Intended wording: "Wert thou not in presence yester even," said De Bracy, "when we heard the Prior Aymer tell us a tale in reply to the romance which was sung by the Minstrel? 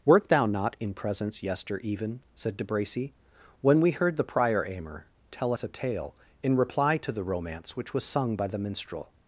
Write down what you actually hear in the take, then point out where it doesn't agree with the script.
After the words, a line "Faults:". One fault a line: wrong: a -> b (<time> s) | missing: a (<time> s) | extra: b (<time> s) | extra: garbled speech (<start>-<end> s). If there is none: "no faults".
"Wert thou not in presence yester even," said De Bracy, "when we heard the Prior Aymer tell us a tale in reply to the romance which was sung by the Minstrel?
Faults:
no faults